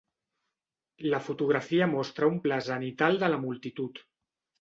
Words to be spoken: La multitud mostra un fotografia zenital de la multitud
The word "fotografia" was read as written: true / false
false